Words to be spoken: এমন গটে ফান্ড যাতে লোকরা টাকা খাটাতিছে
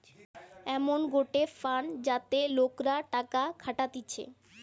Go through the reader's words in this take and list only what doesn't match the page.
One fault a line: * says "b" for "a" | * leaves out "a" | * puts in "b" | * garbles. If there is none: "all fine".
all fine